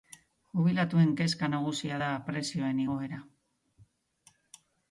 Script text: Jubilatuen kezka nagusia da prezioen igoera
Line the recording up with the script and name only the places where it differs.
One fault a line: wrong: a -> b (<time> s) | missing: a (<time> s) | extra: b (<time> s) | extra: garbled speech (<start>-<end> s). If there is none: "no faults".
no faults